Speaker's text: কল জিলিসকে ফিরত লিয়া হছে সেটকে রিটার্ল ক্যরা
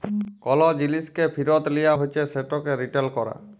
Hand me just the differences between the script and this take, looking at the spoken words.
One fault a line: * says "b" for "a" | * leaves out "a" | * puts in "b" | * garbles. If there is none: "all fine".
all fine